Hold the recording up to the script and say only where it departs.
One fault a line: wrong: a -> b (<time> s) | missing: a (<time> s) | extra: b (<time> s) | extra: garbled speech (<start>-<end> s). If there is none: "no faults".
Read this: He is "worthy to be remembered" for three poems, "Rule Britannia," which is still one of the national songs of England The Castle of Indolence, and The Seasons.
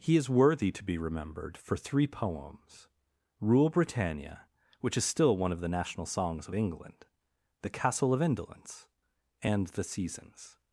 no faults